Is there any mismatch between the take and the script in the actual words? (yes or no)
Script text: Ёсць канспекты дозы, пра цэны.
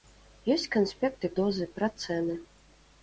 no